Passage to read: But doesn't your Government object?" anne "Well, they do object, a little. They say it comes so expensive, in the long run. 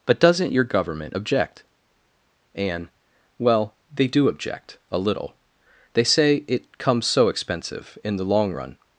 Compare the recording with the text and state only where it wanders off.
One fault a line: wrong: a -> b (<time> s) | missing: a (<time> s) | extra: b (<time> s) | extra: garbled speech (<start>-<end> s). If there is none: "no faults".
no faults